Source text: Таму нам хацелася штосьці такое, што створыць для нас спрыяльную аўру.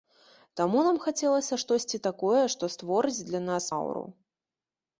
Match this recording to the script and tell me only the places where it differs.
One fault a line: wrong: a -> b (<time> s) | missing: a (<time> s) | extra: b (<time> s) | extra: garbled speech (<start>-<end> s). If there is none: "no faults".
missing: спрыяльную (3.6 s)